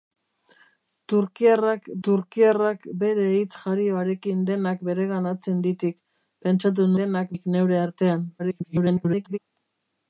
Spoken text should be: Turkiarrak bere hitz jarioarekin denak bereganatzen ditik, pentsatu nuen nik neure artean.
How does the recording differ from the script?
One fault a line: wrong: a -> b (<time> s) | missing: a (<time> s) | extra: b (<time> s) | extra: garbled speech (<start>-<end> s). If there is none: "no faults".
extra: turkiarrak (2.1 s)
wrong: nuen -> denak (7.0 s)
extra: garbled speech (8.4-9.4 s)